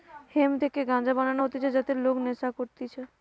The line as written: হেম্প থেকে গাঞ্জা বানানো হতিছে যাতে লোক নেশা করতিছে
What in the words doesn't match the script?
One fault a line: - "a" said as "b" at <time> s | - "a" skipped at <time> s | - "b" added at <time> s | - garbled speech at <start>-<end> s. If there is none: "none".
none